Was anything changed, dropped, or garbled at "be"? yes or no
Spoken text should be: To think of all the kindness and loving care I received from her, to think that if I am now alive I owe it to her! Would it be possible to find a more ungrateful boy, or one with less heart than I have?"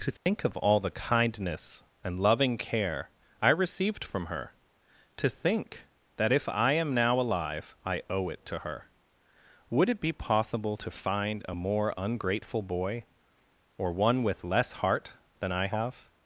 no